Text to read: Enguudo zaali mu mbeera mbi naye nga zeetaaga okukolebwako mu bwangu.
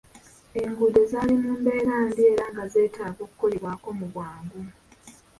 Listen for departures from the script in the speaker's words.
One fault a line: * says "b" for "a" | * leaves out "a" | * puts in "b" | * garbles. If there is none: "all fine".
* says "era" for "naye"